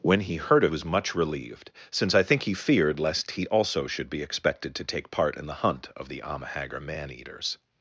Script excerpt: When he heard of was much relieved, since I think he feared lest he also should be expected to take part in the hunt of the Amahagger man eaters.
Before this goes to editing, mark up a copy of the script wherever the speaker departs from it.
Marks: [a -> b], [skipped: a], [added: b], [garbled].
When he heard of was much relieved, since I think he feared lest he also should be expected to take part in the hunt of the Amahagger man eaters.